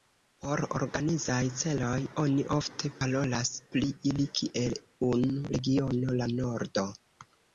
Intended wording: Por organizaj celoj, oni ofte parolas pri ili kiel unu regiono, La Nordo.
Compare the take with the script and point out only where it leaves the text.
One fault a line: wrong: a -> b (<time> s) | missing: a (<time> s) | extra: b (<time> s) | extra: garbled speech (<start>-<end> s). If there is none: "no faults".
no faults